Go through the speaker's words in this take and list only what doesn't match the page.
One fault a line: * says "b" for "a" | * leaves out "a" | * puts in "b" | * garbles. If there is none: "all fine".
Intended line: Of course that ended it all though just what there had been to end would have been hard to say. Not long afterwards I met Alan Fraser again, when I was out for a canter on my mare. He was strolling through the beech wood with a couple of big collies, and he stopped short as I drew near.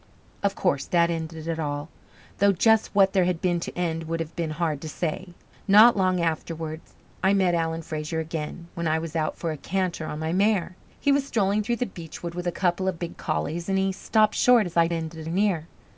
* says "ended" for "drew"